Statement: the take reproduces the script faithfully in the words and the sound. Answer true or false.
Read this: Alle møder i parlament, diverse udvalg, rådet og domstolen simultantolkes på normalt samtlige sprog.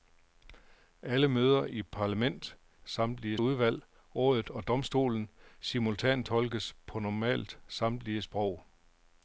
false